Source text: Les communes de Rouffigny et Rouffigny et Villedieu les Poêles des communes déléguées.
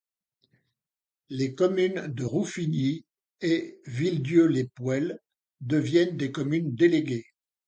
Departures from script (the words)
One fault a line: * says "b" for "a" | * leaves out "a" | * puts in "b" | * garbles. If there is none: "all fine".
* leaves out "Rouffigny et"
* puts in "deviennent"